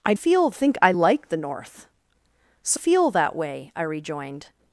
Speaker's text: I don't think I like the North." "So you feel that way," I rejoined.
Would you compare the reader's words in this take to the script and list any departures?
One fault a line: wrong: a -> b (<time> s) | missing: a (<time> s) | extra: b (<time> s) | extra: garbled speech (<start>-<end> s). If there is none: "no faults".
wrong: don't -> feel (0.1 s)
missing: you (2.8 s)